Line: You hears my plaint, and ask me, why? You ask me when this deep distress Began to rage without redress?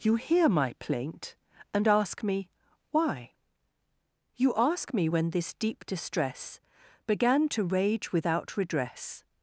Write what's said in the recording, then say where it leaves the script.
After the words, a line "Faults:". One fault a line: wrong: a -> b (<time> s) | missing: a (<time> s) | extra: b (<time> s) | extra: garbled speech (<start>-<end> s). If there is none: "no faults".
You hear my plaint, and ask me, why? You ask me when this deep distress Began to rage without redress?
Faults:
wrong: hears -> hear (0.1 s)